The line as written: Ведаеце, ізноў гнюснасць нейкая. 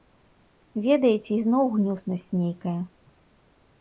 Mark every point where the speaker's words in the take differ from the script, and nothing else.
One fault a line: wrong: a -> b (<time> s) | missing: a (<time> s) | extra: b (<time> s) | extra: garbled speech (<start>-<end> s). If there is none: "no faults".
no faults